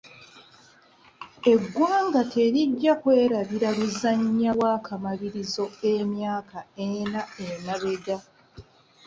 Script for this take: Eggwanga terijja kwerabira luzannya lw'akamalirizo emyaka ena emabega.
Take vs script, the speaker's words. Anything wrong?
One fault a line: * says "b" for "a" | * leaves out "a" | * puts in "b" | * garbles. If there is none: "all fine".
all fine